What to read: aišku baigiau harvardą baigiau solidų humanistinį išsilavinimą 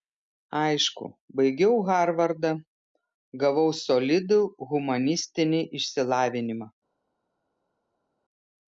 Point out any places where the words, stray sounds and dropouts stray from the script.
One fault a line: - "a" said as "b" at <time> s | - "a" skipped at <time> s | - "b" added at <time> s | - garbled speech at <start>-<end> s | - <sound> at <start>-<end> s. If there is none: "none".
- "baigiau" said as "gavau" at 3.4 s